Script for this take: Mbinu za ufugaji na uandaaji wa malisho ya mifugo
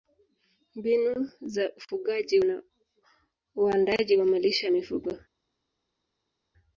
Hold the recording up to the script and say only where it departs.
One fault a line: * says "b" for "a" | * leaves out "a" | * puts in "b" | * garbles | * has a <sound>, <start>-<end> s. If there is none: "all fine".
all fine